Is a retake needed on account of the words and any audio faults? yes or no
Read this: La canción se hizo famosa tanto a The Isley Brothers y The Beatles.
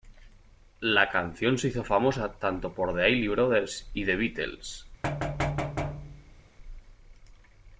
yes